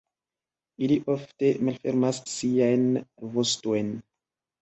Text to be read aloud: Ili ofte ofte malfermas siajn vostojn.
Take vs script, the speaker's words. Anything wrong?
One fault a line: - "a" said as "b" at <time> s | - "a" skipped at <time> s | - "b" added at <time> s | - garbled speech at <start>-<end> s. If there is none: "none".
- "ofte" skipped at 1.5 s